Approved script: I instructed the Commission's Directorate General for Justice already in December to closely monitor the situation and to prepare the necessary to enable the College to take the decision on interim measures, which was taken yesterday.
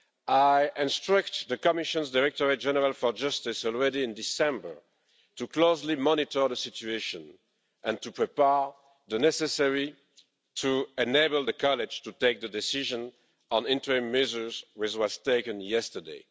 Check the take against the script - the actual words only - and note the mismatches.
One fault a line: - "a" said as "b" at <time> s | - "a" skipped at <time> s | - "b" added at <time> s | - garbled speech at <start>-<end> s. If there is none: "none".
none